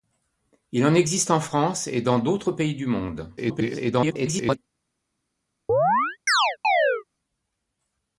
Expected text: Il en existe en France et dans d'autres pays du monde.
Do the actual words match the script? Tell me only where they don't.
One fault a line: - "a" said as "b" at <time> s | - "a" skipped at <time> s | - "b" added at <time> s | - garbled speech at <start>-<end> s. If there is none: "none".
- garbled speech at 3.4-4.6 s